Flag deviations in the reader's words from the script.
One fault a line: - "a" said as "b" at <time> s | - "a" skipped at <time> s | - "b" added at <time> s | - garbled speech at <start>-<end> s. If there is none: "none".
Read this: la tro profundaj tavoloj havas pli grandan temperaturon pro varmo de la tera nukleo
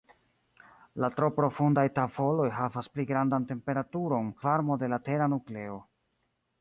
- "pro" skipped at 4.3 s